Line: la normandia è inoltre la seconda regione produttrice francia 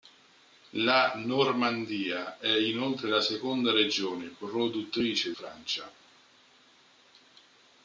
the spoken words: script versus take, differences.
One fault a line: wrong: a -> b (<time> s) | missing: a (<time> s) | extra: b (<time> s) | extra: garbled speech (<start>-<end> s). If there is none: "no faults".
no faults